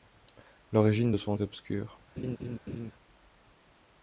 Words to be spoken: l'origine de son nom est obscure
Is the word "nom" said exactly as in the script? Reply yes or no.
no